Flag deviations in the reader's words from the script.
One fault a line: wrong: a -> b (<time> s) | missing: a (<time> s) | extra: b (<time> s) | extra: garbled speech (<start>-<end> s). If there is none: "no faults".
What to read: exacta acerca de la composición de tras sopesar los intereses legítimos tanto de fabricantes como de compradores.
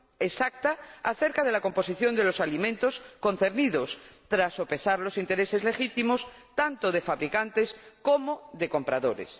extra: los alimentos concernidos (2.2 s)